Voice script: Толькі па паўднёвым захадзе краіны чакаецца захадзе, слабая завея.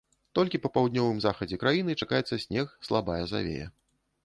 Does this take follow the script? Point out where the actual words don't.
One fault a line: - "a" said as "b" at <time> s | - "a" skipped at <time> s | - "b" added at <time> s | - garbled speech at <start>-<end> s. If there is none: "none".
- "захадзе" said as "снег" at 2.5 s